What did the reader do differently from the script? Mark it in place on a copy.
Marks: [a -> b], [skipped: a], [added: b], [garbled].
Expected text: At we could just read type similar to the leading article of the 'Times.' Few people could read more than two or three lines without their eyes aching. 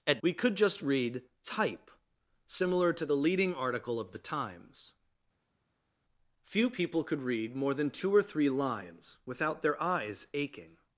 At we could just read type similar to the leading article of the 'Times.' Few people could read more than two or three lines without their eyes aching.